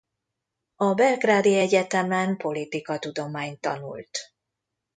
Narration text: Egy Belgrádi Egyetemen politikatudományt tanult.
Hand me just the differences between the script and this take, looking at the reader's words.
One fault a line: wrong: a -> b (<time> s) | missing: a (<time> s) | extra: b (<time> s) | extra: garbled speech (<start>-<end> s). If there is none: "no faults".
wrong: Egy -> A (0.8 s)